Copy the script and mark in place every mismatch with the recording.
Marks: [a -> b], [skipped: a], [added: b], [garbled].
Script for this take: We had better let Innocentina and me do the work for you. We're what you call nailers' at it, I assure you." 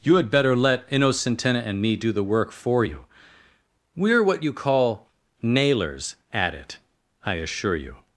[We -> You] had better let Innocentina and me do the work for you. We're what you call nailers' at it, I assure you."